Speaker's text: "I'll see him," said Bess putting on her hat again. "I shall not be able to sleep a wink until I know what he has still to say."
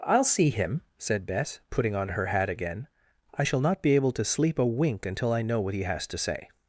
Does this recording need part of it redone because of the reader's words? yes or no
yes